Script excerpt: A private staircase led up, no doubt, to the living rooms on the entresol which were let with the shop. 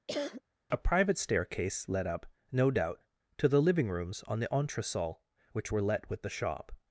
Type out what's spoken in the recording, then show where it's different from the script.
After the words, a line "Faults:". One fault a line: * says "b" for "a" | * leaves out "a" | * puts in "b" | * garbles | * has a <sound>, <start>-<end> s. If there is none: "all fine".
A private staircase led up, no doubt, to the living rooms on the entresol which were let with the shop.
Faults:
* has a cough, 0.1-0.4 s